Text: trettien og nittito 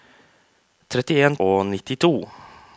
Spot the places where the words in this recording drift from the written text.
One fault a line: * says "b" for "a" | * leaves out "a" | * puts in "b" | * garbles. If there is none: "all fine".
all fine